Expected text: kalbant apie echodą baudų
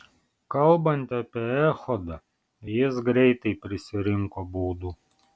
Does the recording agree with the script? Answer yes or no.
no